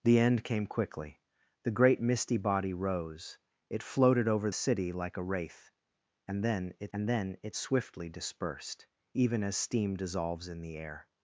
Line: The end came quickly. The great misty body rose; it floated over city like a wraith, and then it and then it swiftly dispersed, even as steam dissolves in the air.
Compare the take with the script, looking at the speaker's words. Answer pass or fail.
pass